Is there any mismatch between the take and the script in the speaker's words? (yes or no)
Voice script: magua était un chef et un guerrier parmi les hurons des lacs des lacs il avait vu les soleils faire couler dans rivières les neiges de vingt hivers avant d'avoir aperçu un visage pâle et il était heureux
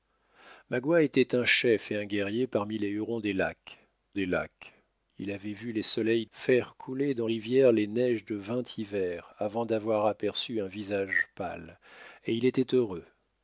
no